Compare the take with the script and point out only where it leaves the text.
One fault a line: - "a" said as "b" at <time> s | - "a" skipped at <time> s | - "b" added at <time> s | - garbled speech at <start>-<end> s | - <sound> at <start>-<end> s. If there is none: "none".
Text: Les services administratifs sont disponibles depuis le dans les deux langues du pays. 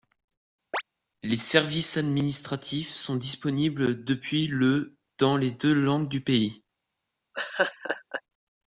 - chirp at 0.7-0.8 s
- laugh at 7.3-8.2 s